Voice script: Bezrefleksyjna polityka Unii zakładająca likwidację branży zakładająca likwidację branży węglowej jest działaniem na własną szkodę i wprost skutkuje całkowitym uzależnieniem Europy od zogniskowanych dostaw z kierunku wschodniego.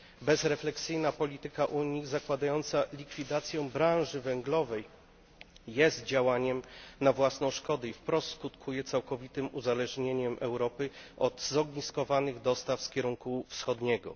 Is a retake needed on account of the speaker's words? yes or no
yes